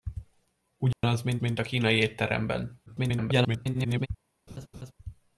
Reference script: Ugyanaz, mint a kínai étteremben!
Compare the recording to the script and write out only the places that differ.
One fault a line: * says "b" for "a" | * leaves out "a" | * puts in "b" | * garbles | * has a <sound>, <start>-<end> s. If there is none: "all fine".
* has a dropout, 0.9-1.0 s
* puts in "mint"
* garbles
* has a laugh, 4.5-4.9 s